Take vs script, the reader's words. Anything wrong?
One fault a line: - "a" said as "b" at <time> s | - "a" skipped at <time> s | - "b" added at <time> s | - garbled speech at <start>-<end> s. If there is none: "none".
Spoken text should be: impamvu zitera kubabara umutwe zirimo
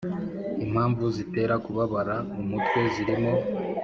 none